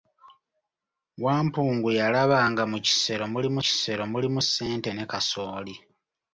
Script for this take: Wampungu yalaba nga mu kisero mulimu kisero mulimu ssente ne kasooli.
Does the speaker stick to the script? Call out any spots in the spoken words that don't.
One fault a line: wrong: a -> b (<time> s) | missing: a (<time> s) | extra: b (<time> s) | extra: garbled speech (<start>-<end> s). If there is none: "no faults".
no faults